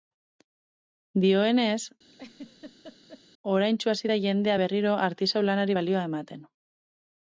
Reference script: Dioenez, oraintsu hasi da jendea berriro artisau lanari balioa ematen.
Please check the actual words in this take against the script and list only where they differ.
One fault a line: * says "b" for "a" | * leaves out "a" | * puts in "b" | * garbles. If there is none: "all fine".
all fine